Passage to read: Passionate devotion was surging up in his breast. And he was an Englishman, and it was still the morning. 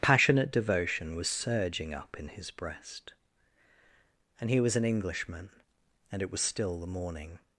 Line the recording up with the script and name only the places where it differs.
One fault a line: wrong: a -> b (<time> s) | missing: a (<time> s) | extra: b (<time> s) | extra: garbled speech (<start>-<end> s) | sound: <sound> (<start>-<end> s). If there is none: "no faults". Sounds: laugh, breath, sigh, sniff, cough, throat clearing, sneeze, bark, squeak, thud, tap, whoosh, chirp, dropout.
no faults